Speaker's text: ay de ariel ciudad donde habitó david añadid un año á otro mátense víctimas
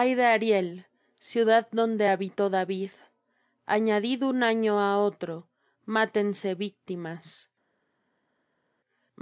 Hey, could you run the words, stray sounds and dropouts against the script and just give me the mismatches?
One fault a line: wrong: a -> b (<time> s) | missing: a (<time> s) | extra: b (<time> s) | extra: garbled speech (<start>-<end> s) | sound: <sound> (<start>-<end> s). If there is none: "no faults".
no faults